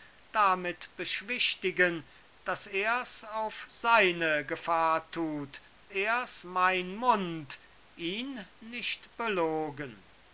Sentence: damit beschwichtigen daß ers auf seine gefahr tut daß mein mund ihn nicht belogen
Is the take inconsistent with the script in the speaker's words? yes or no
yes